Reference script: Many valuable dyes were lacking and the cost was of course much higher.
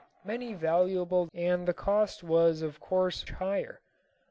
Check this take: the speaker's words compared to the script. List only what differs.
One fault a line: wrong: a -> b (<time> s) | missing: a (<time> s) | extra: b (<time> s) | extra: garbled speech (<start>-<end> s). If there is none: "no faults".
missing: dyes were lacking (1.3 s)
missing: much (3.3 s)